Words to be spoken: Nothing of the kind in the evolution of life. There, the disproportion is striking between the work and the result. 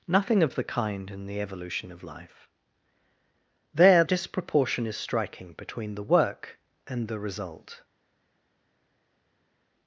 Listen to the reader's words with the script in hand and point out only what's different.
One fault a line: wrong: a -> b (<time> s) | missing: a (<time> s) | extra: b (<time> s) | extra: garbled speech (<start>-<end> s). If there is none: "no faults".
missing: the (4.0 s)